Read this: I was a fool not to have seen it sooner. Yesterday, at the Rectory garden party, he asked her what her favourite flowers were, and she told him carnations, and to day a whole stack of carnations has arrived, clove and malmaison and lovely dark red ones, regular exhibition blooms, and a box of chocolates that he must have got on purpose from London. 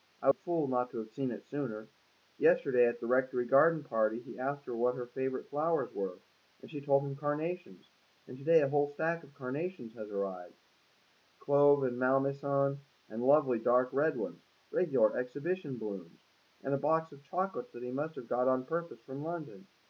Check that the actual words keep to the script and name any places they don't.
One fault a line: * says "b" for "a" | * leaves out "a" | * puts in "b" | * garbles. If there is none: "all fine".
* leaves out "was"